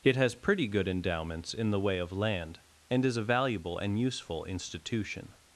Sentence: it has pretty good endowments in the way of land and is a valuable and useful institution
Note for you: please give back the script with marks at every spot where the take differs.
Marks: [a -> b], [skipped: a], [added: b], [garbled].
it has pretty good endowments in the way of land and is a valuable and useful institution